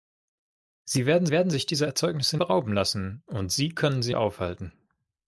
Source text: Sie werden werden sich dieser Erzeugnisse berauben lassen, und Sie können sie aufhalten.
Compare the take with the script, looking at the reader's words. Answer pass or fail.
pass